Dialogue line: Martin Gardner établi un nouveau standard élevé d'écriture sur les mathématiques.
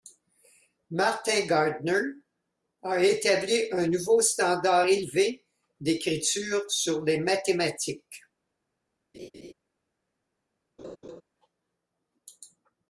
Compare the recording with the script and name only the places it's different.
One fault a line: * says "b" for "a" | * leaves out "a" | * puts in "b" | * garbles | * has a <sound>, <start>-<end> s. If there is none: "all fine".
* puts in "a"
* has a laugh, 9.1-9.5 s
* has a laugh, 10.8-11.2 s